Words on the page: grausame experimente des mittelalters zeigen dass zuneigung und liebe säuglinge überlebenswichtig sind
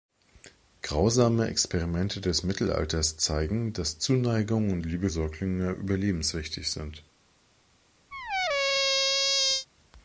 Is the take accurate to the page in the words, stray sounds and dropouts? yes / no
no